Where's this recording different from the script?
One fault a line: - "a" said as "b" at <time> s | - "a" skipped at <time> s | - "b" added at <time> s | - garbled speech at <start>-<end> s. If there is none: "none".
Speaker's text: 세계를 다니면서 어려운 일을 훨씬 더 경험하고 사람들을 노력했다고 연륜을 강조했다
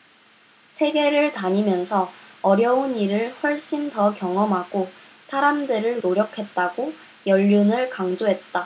none